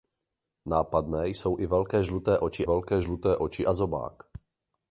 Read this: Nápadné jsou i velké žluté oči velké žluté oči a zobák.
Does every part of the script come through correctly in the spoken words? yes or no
yes